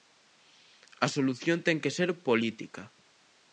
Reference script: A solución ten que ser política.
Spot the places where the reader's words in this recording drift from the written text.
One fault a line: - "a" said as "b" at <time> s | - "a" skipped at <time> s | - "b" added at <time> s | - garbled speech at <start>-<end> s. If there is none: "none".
none